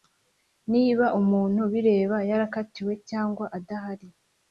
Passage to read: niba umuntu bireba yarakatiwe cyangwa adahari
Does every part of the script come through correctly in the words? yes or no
yes